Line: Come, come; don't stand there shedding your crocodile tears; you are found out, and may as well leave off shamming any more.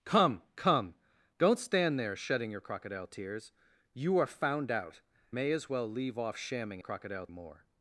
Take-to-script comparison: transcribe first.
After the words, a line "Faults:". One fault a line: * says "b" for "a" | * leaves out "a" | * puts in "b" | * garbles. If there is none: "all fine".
Come, come; don't stand there shedding your crocodile tears; you are found out, may as well leave off shamming crocodile more.
Faults:
* leaves out "and"
* says "crocodile" for "any"